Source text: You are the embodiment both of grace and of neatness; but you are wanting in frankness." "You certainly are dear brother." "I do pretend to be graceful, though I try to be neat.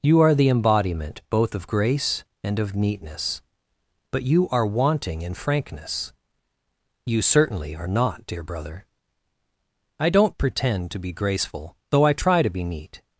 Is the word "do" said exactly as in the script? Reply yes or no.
no